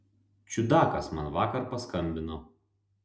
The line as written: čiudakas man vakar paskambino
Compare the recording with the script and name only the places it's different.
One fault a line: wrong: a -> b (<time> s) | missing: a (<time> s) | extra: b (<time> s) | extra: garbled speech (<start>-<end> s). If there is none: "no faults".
no faults